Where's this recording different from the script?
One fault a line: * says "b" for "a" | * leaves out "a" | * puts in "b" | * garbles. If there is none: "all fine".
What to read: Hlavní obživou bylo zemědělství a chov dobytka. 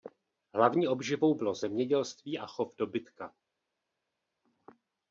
all fine